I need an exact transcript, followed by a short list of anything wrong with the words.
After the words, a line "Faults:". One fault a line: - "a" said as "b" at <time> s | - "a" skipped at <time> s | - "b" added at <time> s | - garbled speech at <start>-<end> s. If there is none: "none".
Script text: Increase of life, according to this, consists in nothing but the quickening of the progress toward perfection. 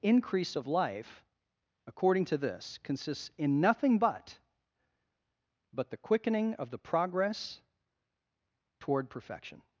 Increase of life, according to this, consists in nothing but but the quickening of the progress toward perfection.
Faults:
- "but" added at 5.7 s